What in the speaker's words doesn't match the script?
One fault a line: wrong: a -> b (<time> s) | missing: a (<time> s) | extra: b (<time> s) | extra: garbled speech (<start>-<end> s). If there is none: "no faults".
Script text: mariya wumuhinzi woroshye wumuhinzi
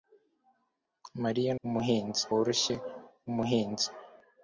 no faults